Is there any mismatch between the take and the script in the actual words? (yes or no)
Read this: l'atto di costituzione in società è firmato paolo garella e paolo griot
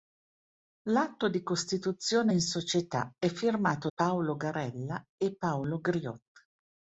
no